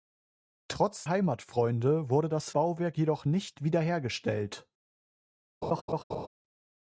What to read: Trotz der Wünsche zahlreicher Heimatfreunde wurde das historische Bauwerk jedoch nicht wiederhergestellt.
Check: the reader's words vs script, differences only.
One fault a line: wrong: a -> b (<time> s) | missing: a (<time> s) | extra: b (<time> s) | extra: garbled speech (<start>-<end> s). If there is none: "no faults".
missing: der Wünsche zahlreicher (1.1 s)
missing: historische (2.5 s)